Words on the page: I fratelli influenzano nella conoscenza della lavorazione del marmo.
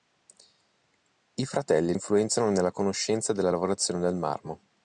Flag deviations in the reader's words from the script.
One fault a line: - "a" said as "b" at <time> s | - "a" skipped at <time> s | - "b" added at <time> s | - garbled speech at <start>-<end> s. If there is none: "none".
none